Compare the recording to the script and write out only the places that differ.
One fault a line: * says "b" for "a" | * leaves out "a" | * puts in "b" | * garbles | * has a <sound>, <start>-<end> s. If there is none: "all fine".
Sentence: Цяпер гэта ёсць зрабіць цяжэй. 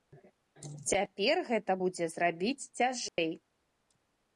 * says "будзе" for "ёсць"
* has a dropout, 3.1-3.2 s